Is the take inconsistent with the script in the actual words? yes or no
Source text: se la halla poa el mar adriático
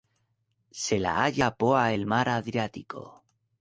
no